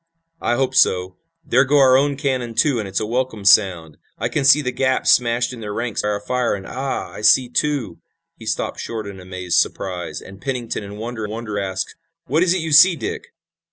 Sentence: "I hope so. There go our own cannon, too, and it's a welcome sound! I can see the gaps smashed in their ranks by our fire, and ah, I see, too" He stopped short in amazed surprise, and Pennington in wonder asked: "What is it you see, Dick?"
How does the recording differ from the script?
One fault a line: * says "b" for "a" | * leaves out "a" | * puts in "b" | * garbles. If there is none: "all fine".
* leaves out "by"
* puts in "wonder"